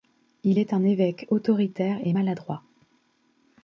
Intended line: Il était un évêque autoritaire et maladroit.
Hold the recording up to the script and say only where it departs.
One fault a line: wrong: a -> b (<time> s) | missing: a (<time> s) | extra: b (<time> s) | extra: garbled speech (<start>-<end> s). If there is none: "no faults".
wrong: était -> est (0.6 s)